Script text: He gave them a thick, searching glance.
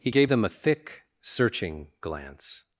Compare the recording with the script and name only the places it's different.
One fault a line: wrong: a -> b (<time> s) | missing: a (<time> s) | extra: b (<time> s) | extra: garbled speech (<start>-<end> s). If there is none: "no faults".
no faults